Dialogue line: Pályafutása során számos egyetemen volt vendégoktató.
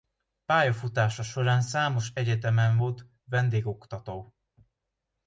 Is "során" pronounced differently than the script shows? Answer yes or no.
no